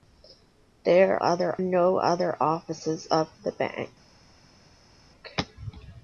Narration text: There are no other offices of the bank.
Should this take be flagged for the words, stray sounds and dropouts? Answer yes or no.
yes